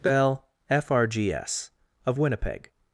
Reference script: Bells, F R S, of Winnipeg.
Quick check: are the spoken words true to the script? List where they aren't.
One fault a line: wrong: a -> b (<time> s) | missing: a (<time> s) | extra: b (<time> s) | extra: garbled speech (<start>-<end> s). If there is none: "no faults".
wrong: Bells -> Bell (0.0 s)
extra: G (1.1 s)